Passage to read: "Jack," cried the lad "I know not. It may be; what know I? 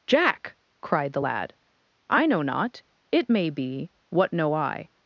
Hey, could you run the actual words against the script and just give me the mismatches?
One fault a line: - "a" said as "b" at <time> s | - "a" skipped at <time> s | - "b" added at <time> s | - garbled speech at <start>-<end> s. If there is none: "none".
none